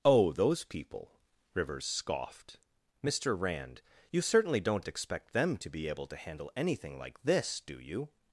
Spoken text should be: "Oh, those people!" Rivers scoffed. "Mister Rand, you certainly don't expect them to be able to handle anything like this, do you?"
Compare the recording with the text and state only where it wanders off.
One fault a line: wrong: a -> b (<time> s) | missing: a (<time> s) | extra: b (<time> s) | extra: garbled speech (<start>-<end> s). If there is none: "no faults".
no faults